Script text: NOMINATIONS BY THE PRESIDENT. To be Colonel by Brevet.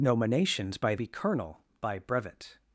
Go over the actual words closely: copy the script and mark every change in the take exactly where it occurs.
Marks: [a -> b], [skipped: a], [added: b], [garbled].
NOMINATIONS BY [skipped: THE PRESIDENT. To] be Colonel by Brevet.